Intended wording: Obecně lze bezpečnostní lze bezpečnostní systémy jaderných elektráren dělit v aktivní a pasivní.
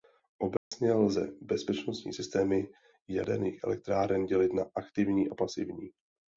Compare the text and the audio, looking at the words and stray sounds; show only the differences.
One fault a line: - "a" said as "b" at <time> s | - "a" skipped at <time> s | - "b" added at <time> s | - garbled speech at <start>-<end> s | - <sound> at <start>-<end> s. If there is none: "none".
- dropout at 0.6-0.7 s
- "lze bezpečnostní" skipped at 2.1 s
- "v" said as "na" at 4.5 s